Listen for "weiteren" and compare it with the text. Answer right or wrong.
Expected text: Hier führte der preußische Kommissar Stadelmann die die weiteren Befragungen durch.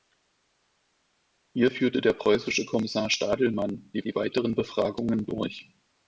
right